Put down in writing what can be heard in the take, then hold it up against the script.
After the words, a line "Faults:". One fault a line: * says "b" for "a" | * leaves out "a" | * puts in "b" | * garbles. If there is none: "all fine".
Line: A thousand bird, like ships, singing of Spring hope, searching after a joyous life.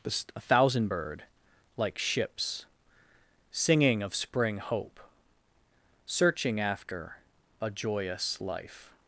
A thousand bird, like ships, singing of Spring hope, searching after a joyous life.
Faults:
all fine